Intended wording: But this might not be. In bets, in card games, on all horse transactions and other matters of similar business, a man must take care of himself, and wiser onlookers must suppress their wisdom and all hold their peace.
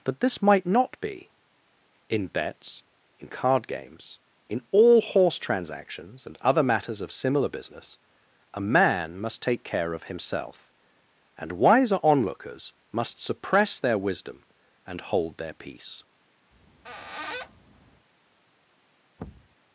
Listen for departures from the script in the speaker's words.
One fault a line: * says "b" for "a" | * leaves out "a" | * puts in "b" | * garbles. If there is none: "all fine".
* says "in" for "on"
* leaves out "all"